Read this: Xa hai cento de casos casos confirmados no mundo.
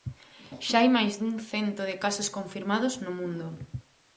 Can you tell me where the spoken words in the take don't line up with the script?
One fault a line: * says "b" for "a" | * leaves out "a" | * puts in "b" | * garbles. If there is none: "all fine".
* puts in "máis dun"
* leaves out "casos"